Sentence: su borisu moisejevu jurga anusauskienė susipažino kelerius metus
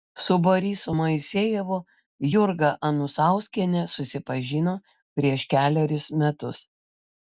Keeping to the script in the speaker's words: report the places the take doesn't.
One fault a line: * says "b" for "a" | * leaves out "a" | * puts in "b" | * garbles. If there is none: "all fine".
* puts in "prieš"